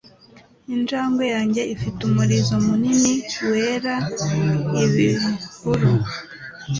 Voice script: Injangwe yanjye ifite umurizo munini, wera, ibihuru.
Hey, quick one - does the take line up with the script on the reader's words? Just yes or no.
yes